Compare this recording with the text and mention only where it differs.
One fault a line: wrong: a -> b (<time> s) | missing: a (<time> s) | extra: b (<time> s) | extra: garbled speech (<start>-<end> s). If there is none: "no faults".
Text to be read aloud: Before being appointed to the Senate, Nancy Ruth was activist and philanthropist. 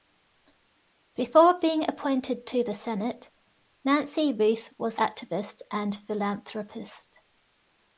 no faults